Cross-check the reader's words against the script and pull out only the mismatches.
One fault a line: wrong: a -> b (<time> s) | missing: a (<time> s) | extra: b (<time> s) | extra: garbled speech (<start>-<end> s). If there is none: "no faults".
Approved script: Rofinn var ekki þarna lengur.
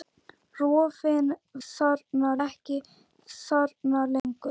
wrong: var -> þarna (1.7 s)